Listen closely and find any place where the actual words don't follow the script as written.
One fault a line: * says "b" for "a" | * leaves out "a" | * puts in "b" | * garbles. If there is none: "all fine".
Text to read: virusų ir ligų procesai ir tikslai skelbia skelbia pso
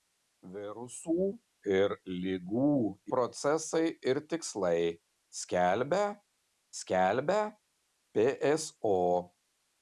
all fine